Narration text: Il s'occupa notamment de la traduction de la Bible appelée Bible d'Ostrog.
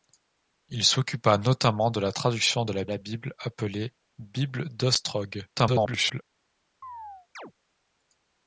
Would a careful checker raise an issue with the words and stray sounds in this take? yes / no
yes